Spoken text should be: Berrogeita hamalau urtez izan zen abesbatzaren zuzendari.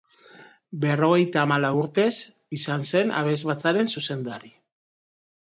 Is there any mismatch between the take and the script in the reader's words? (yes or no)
no